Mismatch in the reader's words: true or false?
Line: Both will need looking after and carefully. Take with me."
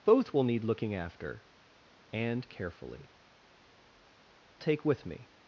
false